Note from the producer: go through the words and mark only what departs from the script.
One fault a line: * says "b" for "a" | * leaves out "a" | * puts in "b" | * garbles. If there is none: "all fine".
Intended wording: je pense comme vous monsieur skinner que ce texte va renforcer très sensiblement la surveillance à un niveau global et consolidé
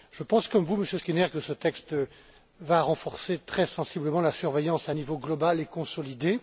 all fine